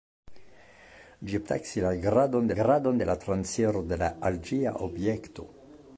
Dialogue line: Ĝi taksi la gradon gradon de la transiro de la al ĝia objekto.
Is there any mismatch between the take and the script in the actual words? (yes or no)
no